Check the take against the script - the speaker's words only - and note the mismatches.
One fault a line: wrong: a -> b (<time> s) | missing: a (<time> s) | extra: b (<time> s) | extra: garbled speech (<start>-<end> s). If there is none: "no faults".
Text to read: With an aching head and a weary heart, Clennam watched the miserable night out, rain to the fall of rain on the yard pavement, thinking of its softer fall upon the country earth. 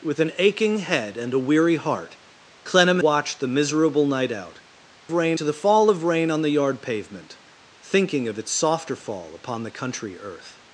no faults